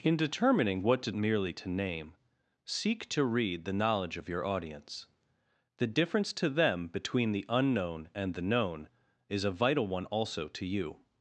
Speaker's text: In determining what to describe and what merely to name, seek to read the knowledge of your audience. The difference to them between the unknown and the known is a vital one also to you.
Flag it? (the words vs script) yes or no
yes